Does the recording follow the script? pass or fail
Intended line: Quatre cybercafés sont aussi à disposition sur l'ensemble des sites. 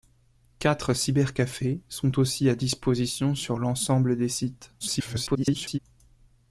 fail